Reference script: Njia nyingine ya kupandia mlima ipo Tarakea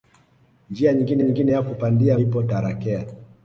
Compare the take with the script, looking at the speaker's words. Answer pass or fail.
fail